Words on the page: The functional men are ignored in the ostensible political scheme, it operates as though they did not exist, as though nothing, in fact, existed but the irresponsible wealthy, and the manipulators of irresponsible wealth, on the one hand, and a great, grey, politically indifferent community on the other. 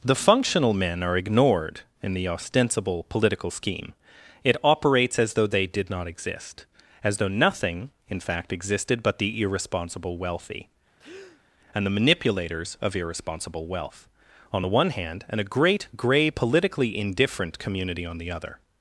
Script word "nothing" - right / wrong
right